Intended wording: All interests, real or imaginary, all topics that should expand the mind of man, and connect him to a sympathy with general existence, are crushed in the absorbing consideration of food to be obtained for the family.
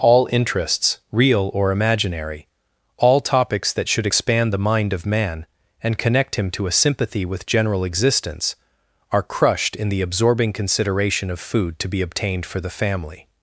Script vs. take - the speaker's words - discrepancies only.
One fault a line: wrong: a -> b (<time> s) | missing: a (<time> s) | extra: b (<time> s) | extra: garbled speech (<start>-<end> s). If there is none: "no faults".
no faults